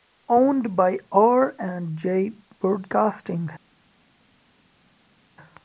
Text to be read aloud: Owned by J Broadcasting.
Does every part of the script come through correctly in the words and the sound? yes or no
no